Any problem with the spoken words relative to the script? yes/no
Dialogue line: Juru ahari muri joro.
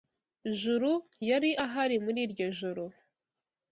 yes